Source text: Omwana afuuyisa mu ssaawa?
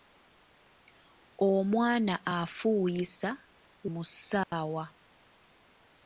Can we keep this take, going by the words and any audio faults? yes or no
no